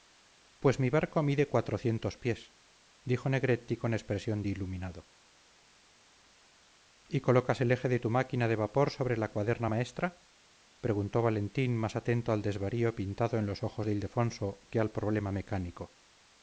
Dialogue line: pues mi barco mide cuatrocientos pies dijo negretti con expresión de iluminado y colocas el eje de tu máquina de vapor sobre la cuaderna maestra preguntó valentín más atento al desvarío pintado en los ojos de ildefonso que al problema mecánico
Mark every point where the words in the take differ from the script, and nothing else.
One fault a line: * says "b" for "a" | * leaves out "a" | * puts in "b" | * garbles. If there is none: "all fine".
all fine